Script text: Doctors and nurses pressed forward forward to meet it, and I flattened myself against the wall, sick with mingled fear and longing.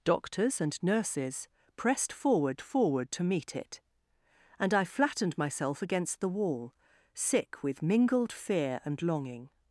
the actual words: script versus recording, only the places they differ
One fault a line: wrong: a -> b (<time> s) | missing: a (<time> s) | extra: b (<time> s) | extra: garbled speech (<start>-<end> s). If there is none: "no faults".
no faults